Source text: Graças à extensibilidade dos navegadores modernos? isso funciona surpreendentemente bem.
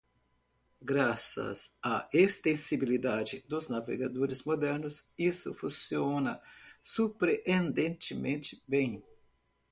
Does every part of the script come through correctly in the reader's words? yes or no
yes